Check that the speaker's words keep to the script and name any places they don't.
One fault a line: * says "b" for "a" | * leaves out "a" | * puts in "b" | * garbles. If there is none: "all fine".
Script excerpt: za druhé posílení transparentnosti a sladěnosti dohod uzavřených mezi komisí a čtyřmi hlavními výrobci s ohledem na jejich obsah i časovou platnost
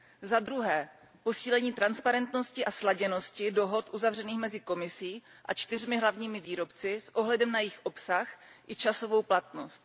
all fine